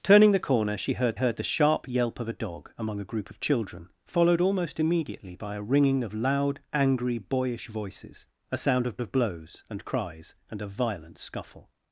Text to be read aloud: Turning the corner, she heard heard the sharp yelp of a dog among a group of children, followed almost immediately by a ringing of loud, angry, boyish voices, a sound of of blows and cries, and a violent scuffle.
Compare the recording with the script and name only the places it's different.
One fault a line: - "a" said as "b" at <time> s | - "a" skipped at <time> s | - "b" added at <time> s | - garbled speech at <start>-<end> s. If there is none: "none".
none